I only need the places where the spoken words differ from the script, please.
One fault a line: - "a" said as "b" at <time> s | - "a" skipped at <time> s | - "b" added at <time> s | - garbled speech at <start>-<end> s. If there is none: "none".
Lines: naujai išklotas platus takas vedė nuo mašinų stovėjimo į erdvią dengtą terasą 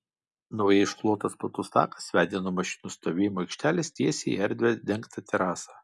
- "aikštelės tiesiai" added at 3.5 s